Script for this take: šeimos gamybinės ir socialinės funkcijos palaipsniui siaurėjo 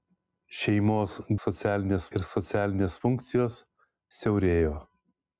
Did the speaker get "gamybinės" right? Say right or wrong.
wrong